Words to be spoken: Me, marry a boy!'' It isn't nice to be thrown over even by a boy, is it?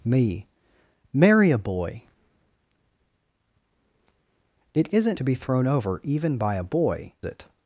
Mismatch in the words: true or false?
true